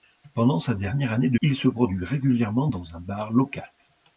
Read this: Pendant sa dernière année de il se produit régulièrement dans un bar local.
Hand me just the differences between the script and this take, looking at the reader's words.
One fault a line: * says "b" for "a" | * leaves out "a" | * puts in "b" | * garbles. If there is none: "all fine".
all fine